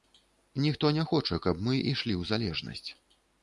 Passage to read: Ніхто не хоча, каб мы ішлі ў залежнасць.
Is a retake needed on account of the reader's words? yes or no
no